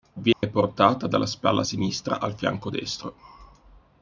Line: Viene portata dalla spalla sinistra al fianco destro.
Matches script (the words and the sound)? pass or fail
fail